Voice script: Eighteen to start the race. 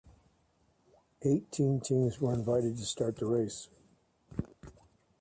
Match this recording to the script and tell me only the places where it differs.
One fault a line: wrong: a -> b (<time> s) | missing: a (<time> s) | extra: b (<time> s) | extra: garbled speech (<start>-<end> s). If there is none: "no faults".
extra: teams were invited (1.8 s)